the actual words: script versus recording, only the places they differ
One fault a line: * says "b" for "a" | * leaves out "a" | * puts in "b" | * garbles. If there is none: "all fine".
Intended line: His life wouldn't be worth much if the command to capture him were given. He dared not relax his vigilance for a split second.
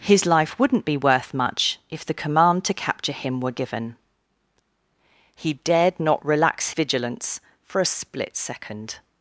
* leaves out "his"